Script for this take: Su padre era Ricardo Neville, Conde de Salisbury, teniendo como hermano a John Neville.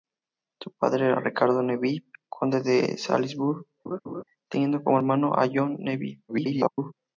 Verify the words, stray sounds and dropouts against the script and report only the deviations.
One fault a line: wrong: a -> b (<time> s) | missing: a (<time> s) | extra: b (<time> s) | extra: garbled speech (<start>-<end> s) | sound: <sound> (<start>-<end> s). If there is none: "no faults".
sound: laugh (3.9-4.2 s)
extra: garbled speech (6.3-6.9 s)